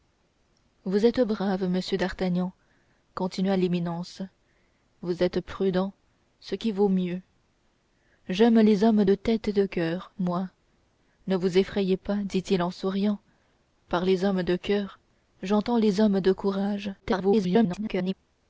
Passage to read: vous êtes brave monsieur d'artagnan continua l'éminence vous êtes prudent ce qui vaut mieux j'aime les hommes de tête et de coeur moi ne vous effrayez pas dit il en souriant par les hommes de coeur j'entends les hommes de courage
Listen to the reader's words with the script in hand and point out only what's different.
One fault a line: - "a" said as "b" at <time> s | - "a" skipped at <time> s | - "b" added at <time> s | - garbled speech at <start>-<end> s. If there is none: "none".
- garbled speech at 17.0-18.1 s